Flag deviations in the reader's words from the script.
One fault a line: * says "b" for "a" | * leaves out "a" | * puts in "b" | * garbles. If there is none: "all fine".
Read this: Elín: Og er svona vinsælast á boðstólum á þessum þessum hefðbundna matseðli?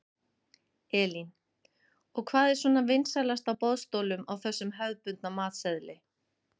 * puts in "hvað"
* leaves out "þessum"